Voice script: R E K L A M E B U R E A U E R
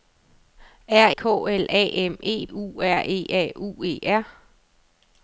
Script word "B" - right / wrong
wrong